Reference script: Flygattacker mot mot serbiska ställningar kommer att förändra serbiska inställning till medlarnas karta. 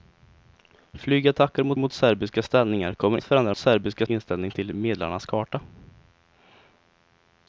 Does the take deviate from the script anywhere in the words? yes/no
no